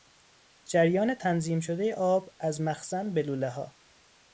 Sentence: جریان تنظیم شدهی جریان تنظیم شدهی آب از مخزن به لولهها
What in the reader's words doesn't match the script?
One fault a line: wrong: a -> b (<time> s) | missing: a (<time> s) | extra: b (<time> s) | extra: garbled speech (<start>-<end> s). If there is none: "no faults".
missing: جریان تنظیم شدهی (1.9 s)